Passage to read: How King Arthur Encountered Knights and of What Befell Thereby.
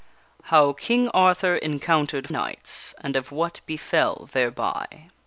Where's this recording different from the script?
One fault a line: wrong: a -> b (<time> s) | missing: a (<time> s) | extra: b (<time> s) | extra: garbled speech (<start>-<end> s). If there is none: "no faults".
no faults